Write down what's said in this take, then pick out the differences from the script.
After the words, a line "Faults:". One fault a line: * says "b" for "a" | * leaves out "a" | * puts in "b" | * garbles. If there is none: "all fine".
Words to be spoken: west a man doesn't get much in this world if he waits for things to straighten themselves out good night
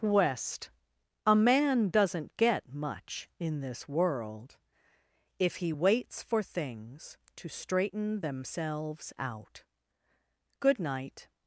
west a man doesn't get much in this world if he waits for things to straighten themselves out good night
Faults:
all fine